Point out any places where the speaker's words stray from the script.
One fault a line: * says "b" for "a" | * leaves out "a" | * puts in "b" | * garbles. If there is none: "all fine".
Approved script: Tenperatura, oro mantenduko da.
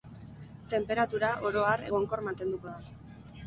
* puts in "har egonkor"